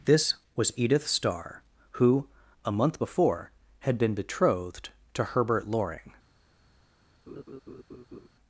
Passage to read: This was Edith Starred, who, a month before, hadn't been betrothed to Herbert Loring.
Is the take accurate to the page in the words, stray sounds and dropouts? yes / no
no